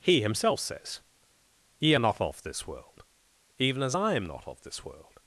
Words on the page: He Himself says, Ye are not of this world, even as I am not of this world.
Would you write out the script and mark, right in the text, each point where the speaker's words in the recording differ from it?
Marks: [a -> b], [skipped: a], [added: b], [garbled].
He Himself says, Ye are not of this world, even as I am not of this world.